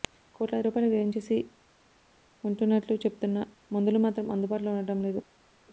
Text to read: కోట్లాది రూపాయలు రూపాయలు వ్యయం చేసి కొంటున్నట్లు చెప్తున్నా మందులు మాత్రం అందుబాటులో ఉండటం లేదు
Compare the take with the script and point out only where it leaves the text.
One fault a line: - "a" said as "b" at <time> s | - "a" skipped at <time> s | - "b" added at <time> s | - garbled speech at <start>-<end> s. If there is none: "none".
- "రూపాయలు" skipped at 0.9 s